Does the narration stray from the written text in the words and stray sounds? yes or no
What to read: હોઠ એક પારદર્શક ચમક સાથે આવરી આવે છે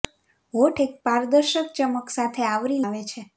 no